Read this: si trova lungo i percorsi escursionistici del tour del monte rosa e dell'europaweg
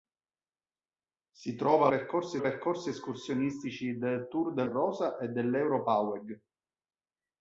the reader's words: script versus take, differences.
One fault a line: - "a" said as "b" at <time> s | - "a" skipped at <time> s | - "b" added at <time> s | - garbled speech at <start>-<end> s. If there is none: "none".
- "lungo" said as "percorsi" at 1.9 s
- "monte" skipped at 4.7 s